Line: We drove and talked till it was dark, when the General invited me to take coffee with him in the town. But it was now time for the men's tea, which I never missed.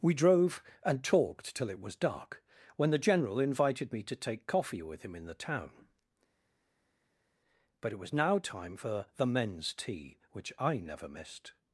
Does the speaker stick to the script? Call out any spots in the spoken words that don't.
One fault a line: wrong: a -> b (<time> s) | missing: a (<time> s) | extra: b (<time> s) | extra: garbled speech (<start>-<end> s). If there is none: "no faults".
no faults